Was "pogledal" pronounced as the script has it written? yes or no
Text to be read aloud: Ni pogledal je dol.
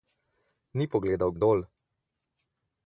yes